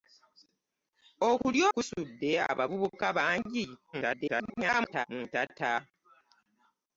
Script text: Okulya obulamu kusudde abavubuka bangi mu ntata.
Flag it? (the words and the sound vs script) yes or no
yes